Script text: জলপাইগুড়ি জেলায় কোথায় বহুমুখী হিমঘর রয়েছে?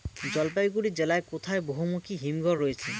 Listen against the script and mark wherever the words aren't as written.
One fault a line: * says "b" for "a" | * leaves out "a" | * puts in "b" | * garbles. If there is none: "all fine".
all fine